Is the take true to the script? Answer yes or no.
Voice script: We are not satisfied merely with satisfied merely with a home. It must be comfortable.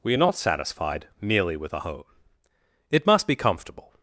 no